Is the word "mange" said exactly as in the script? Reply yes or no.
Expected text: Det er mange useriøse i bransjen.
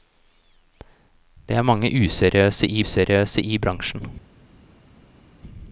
yes